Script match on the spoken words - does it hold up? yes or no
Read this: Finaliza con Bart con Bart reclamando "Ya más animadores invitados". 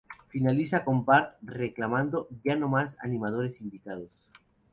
no